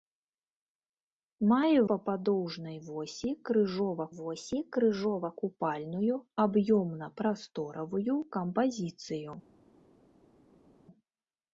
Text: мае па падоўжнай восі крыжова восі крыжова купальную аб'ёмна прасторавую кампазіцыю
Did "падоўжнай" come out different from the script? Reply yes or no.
no